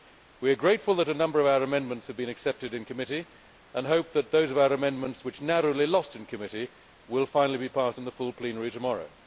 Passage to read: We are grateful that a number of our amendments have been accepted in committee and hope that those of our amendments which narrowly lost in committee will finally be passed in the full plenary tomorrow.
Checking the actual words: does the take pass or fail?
pass